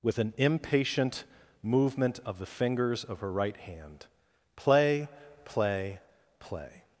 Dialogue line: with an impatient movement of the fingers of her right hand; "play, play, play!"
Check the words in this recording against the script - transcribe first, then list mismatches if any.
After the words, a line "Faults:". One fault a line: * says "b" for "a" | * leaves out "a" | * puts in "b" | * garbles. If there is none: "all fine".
with an impatient movement of the fingers of her right hand; "play, play, play!"
Faults:
all fine